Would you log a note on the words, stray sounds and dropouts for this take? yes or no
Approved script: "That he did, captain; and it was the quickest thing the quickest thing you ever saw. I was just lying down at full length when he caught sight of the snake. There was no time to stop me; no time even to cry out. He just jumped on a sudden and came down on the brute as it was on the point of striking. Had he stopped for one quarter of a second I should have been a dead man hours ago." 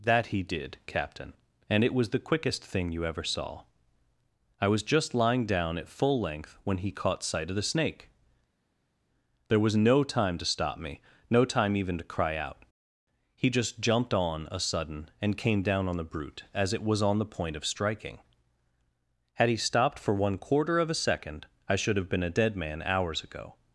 yes